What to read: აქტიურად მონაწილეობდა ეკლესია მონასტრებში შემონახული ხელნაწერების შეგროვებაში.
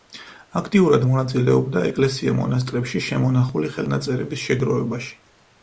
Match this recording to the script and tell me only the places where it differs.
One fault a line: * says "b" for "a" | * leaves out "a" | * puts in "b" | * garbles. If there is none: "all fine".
all fine